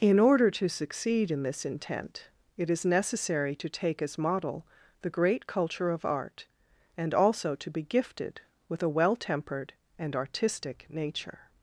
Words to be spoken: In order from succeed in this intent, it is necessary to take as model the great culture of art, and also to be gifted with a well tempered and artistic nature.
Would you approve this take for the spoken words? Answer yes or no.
no